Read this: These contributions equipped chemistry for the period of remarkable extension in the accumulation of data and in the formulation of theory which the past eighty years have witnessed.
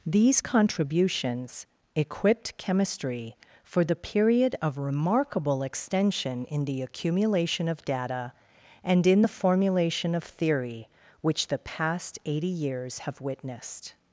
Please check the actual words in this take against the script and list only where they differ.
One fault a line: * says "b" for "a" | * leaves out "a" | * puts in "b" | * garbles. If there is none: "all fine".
all fine